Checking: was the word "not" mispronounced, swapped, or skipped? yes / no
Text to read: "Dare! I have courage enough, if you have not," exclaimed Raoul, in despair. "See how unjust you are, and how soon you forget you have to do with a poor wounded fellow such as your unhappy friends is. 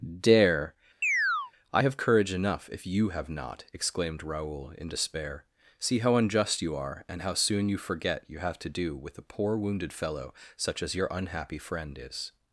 no